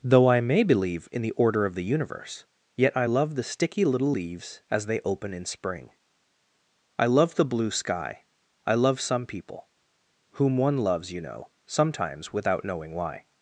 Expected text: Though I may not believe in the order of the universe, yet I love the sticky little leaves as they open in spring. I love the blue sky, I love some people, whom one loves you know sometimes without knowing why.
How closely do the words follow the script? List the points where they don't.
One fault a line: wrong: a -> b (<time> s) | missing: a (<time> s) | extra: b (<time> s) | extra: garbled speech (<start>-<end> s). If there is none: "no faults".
missing: not (0.6 s)